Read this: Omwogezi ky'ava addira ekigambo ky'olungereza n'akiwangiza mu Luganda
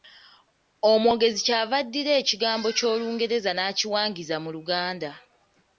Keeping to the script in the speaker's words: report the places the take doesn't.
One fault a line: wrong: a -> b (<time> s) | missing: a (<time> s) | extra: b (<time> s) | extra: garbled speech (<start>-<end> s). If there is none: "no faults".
no faults